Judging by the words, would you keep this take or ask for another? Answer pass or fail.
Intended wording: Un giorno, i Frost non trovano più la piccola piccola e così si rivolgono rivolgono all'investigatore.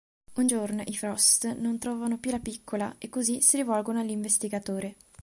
fail